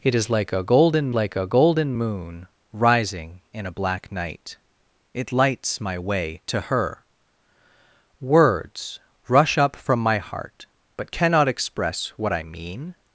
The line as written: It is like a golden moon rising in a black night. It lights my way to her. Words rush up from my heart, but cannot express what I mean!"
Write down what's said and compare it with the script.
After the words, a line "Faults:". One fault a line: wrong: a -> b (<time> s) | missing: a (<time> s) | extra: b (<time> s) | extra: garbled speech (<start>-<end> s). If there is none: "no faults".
It is like a golden like a golden moon rising in a black night. It lights my way to her. Words rush up from my heart, but cannot express what I mean!"
Faults:
extra: like a golden (1.1 s)